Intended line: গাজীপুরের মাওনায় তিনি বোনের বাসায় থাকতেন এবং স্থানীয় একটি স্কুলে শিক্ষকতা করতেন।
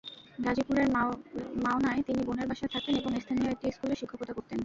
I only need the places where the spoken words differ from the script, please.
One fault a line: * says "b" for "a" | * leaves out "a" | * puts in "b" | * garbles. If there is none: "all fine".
all fine